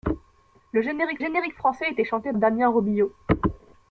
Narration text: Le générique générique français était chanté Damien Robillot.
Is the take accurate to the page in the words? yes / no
yes